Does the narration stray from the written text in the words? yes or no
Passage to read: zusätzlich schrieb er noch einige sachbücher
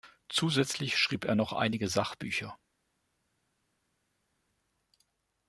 no